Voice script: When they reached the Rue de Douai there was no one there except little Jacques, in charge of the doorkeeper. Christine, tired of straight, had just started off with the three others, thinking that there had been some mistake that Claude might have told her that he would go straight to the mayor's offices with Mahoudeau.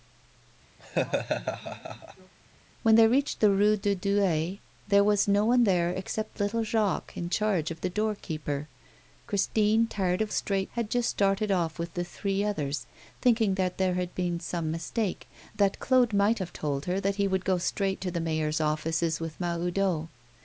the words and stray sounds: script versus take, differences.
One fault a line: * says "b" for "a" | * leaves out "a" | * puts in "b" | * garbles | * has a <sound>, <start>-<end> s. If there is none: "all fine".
* has a laugh, 0.8-2.3 s